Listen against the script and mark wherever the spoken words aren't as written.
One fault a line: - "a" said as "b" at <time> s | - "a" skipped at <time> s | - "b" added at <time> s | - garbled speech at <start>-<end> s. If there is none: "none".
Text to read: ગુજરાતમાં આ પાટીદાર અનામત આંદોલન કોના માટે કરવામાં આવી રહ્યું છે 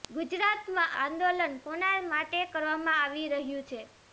- "આ પાટીદાર અનામત" skipped at 0.9 s